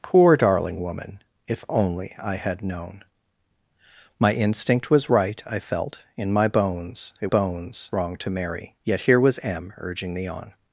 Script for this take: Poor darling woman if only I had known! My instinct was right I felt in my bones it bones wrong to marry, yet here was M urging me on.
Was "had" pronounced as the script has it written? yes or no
yes